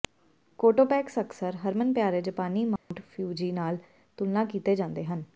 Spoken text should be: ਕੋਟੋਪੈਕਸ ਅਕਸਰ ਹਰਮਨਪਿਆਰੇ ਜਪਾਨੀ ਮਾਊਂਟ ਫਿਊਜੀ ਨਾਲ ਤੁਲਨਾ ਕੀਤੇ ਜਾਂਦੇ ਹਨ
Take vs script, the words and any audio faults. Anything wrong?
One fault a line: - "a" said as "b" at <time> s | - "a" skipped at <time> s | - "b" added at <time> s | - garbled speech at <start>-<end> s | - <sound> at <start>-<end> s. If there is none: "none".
- dropout at 2.8-2.9 s